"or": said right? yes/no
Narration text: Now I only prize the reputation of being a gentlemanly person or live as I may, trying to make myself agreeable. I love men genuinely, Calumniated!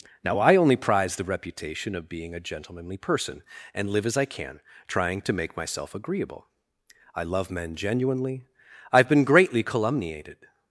no